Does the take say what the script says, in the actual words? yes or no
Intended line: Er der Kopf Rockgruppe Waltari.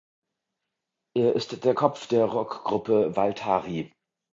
no